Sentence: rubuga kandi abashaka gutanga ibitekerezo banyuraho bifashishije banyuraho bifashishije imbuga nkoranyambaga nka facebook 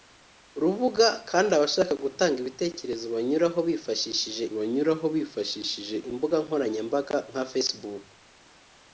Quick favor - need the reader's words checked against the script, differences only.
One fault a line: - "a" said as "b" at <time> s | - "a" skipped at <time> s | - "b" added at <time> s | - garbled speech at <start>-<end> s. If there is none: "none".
none